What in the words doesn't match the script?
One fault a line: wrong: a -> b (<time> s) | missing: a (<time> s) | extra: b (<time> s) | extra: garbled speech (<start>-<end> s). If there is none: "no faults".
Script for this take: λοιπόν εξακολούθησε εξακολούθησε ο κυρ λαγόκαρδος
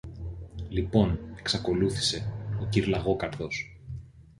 missing: εξακολούθησε (2.3 s)